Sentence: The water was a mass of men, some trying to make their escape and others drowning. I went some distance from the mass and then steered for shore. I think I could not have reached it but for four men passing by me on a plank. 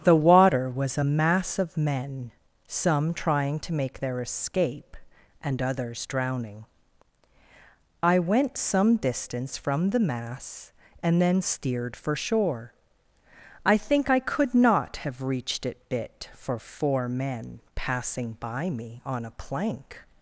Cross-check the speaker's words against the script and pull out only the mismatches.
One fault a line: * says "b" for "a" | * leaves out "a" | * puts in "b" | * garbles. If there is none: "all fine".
* says "bit" for "but"